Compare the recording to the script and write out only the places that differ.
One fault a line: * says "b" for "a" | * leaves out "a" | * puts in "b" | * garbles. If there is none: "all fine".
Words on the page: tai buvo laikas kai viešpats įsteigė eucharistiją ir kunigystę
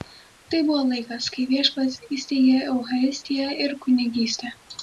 all fine